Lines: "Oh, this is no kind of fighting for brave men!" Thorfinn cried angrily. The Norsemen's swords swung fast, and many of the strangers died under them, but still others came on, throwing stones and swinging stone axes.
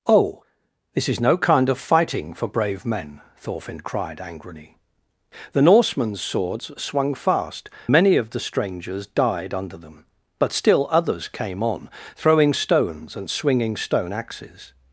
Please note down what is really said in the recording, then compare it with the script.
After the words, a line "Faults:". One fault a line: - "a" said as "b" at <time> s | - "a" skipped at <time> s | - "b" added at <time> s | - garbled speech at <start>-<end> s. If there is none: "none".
"Oh, this is no kind of fighting for brave men!" Thorfinn cried angrily. The Norsemen's swords swung fast, many of the strangers died under them, but still others came on, throwing stones and swinging stone axes.
Faults:
- "and" skipped at 7.7 s